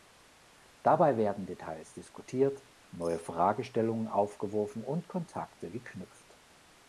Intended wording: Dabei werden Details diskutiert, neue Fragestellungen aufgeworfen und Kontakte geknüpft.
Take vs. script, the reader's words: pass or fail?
pass